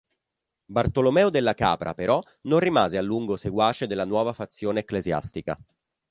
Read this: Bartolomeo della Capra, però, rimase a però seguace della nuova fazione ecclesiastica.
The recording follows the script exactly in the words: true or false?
false